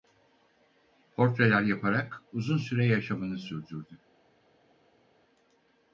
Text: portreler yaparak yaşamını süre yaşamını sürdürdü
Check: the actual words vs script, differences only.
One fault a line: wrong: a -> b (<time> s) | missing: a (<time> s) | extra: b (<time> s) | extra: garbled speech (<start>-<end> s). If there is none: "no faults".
wrong: yaşamını -> uzun (2.3 s)